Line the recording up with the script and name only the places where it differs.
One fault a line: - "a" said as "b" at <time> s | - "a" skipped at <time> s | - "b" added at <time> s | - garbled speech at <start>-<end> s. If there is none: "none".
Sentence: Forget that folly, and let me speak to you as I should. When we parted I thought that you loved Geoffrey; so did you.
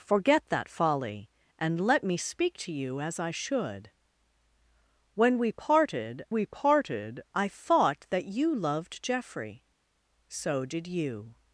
- "we parted" added at 6.3 s